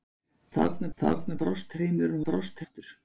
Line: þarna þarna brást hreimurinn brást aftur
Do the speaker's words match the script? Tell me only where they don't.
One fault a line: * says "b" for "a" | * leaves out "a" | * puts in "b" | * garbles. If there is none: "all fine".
all fine